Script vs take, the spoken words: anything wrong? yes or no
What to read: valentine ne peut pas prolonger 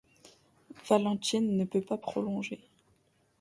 no